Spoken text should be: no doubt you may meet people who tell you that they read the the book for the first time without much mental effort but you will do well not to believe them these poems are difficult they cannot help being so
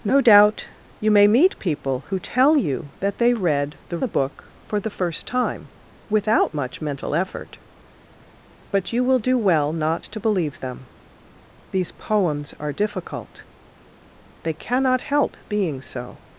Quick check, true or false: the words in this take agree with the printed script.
true